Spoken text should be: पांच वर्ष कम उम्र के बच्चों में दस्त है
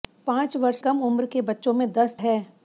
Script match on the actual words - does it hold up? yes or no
yes